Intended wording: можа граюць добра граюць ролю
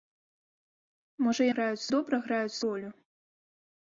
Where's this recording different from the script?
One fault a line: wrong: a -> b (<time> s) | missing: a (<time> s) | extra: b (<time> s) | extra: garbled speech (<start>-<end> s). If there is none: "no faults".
no faults